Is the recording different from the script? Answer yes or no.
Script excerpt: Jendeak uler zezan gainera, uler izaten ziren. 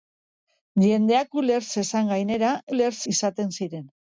no